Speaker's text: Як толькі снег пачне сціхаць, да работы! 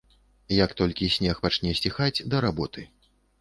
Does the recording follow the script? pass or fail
pass